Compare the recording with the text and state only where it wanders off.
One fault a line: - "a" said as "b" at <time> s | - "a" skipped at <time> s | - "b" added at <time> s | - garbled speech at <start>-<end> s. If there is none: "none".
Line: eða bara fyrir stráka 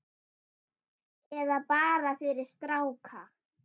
none